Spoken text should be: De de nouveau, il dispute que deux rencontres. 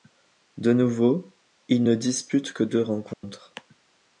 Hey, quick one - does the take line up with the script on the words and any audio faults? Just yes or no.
no